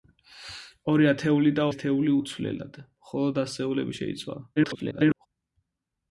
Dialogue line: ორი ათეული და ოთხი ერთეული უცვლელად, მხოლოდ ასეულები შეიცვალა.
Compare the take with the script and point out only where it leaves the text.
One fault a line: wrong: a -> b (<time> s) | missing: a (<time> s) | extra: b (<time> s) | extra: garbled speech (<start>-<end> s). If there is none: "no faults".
missing: ოთხი (1.7 s)
extra: garbled speech (4.6-5.3 s)